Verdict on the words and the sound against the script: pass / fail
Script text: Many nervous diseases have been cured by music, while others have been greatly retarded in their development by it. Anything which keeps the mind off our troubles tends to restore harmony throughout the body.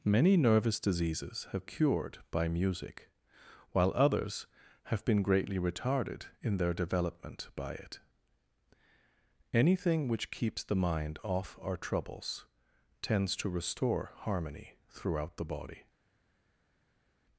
fail